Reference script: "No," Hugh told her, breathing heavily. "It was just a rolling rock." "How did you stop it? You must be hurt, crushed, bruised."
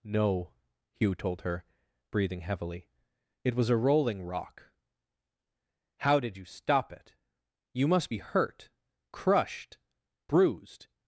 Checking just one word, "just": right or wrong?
wrong